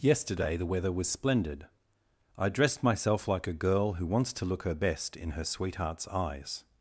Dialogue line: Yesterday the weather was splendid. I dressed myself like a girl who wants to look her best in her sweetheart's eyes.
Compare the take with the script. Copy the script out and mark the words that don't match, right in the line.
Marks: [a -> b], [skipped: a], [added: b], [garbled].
Yesterday the weather was splendid. I dressed myself like a girl who wants to look her best in her sweetheart's eyes.